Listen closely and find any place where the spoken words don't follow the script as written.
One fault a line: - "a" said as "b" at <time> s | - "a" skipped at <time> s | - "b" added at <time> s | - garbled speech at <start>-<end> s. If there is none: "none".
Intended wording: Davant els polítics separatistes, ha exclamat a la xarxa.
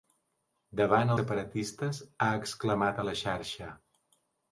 - "els polítics" skipped at 1.1 s